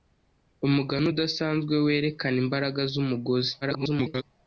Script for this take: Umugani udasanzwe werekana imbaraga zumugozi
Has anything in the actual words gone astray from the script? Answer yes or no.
yes